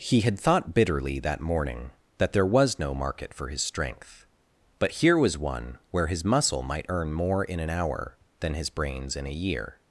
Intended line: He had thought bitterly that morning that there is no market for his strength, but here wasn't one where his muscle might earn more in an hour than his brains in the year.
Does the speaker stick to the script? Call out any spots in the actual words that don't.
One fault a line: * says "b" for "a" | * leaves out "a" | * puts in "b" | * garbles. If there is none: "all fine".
* says "was" for "is"
* says "was" for "wasn't"
* says "a" for "the"